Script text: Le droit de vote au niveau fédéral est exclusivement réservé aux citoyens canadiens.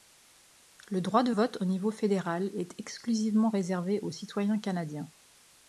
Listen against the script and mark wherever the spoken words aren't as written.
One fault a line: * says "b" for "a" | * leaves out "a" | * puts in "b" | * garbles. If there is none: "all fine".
all fine